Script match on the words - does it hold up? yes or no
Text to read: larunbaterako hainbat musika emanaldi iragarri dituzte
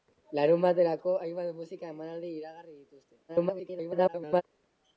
no